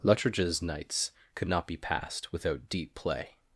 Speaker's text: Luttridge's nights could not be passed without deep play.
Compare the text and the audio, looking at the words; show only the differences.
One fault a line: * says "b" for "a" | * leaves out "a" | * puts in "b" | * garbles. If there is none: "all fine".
all fine